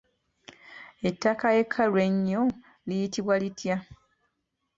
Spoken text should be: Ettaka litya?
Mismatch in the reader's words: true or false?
true